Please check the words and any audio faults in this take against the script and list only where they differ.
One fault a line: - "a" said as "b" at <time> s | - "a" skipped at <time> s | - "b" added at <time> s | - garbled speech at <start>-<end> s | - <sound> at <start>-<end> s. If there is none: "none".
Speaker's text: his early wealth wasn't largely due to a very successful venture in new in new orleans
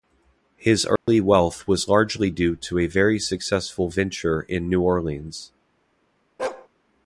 - dropout at 1.0-1.1 s
- "wasn't" said as "was" at 1.7 s
- "in new" skipped at 4.8 s
- bark at 6.4-6.7 s